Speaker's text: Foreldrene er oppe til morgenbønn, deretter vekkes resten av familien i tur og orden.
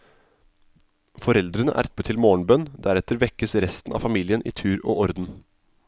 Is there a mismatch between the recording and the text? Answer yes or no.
no